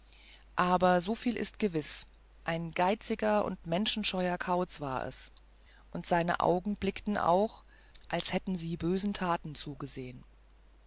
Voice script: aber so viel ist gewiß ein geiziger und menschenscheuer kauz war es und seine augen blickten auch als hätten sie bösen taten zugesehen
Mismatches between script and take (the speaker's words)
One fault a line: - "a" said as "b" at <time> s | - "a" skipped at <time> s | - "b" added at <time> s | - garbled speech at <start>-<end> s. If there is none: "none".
none